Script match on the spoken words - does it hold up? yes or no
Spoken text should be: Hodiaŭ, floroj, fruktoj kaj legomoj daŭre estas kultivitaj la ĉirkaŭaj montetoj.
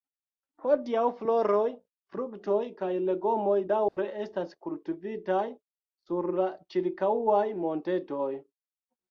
no